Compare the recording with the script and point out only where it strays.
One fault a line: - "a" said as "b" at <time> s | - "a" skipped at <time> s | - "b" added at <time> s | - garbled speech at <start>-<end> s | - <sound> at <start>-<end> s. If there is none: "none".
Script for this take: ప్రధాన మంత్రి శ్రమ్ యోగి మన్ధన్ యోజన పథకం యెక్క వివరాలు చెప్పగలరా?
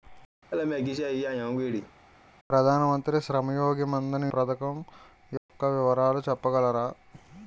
- laugh at 0.5-1.9 s
- "యోజన" skipped at 4.3 s
- dropout at 5.4-5.5 s